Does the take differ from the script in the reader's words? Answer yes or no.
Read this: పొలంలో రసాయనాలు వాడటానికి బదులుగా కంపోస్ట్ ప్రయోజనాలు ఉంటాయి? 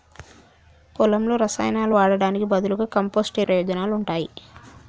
no